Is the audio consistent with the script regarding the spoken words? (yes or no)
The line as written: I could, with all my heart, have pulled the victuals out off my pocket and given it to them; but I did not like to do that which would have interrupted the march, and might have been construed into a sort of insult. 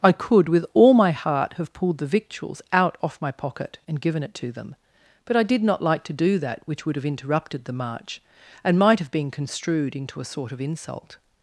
yes